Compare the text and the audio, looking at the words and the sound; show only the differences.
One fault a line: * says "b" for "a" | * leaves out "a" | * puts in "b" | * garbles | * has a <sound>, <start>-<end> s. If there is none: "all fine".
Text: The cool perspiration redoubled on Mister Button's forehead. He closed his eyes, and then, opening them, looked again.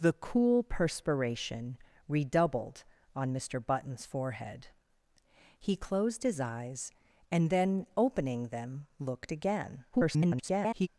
* garbles